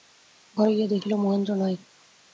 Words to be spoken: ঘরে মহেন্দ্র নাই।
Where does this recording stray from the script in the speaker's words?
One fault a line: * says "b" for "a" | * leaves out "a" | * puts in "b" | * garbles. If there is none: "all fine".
* puts in "গিয়া দেখিল"